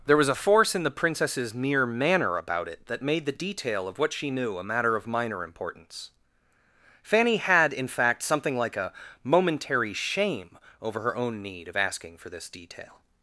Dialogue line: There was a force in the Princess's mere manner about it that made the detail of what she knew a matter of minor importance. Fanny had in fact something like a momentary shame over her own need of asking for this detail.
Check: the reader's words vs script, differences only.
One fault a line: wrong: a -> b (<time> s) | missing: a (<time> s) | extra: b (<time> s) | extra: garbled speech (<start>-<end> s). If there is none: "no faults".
no faults